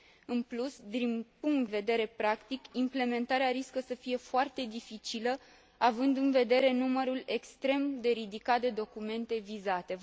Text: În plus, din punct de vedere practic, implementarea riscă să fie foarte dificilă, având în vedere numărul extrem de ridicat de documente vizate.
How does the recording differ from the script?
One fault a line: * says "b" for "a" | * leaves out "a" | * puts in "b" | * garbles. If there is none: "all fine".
* leaves out "de"